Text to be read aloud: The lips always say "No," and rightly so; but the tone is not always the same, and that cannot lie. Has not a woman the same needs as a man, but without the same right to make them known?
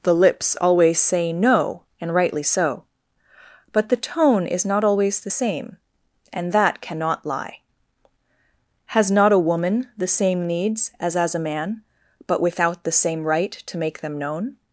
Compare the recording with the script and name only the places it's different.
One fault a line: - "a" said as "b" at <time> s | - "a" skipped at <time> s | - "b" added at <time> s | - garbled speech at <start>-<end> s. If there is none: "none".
- "as" added at 11.2 s